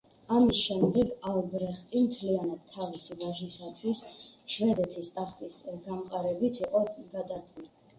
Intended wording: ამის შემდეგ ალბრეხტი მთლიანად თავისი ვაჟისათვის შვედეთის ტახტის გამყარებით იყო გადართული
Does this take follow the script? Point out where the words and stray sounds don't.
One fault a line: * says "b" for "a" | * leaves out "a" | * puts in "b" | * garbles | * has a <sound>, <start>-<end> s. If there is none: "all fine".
all fine